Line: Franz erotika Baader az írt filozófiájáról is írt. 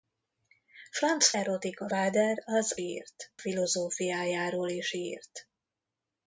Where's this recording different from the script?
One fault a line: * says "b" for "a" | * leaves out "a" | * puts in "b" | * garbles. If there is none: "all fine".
all fine